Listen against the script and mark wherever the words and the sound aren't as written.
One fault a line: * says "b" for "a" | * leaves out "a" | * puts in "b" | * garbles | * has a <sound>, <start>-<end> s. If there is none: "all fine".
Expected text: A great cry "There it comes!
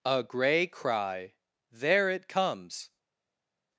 * says "grey" for "great"